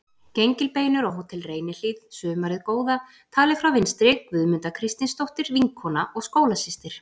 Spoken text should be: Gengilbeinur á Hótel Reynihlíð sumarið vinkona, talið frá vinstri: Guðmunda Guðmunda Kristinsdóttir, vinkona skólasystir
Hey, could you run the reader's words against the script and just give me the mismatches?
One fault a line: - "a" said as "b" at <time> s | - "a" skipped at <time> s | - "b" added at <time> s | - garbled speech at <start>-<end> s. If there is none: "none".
- "vinkona" said as "góða" at 2.7 s
- "Guðmunda" skipped at 4.8 s
- "og" added at 6.2 s